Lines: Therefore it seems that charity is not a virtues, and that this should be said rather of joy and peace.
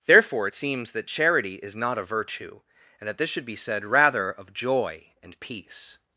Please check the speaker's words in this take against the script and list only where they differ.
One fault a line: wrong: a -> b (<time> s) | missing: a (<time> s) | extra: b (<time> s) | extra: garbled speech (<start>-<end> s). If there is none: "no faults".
wrong: virtues -> virtue (2.0 s)